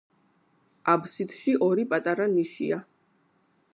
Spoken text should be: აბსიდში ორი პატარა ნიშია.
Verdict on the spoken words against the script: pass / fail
pass